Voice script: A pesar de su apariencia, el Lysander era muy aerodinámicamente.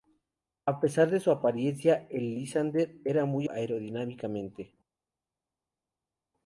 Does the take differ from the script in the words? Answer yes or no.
no